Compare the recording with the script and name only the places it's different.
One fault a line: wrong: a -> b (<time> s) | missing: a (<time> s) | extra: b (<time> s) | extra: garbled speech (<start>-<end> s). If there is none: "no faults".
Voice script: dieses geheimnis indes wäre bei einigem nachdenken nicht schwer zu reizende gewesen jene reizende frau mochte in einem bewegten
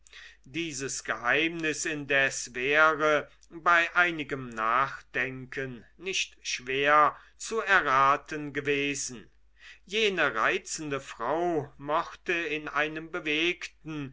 wrong: reizende -> erraten (7.6 s)